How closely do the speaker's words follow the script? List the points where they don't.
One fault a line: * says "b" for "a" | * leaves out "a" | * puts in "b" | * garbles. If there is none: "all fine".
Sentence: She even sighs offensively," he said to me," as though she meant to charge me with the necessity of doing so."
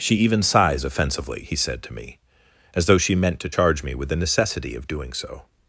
all fine